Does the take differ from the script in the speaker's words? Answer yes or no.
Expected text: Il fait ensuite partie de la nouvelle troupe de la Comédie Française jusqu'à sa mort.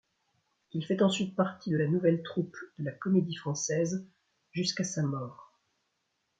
no